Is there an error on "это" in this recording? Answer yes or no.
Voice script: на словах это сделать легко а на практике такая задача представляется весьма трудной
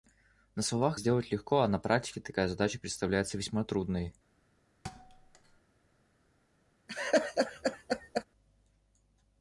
yes